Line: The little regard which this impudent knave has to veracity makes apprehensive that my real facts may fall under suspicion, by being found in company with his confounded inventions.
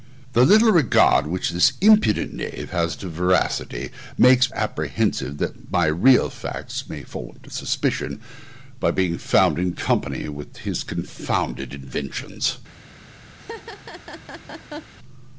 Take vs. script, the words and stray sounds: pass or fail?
fail